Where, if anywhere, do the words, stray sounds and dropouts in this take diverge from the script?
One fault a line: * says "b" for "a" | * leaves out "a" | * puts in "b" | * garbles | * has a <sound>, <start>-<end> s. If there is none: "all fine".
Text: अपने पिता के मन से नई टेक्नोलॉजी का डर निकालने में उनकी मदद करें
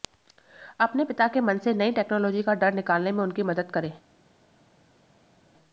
all fine